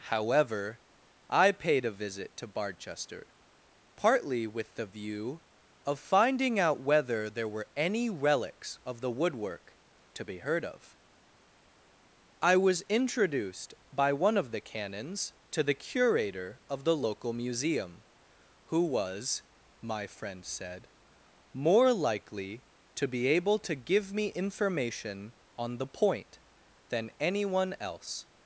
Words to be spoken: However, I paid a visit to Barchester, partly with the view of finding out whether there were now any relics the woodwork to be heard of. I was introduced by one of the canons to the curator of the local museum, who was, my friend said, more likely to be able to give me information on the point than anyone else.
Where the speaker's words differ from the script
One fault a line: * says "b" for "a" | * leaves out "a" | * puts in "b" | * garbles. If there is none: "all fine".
* leaves out "now"
* puts in "of"